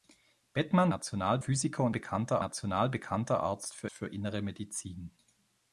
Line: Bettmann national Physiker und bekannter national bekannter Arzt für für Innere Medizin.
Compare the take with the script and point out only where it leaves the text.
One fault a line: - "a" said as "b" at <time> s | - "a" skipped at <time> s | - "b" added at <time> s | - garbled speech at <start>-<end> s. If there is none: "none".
none